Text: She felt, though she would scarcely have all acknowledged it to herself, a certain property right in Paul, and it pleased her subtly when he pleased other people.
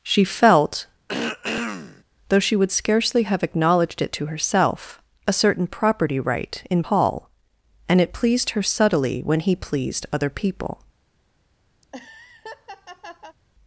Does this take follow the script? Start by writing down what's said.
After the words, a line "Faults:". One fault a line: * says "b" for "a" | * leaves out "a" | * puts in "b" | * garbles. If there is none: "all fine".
She felt, though she would scarcely have acknowledged it to herself, a certain property right in Paul, and it pleased her subtly when he pleased other people.
Faults:
* leaves out "all"